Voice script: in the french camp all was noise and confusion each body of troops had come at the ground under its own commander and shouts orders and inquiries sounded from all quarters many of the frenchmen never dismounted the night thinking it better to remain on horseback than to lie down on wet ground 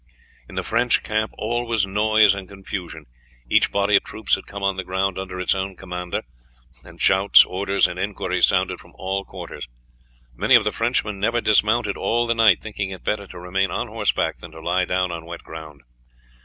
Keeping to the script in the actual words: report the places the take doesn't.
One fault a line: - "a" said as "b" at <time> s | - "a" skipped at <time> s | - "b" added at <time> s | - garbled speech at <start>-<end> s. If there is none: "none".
- "at" said as "on" at 4.6 s
- "all" added at 12.0 s